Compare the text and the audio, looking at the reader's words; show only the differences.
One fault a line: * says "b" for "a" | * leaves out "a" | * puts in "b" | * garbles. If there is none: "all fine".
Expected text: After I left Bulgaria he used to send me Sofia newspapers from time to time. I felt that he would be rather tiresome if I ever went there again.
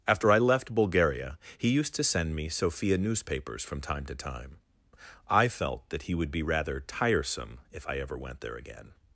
all fine